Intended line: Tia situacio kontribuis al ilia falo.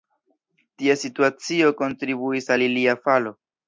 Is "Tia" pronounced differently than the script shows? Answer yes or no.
no